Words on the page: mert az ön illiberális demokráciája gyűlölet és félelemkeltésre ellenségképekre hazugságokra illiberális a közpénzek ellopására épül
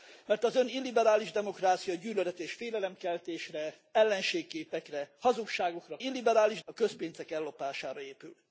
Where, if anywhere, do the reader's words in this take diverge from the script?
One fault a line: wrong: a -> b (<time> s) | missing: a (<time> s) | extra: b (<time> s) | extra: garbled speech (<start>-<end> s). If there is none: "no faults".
no faults